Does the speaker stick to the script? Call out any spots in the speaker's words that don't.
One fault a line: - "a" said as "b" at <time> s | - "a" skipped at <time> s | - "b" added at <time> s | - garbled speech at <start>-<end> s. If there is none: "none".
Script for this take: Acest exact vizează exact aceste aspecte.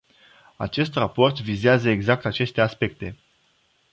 - "exact" said as "raport" at 0.9 s